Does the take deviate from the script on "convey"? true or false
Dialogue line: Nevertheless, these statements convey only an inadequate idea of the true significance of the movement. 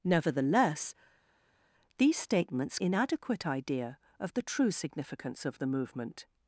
true